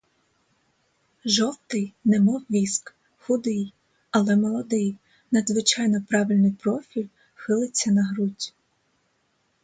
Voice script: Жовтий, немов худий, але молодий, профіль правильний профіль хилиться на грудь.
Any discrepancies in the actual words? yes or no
yes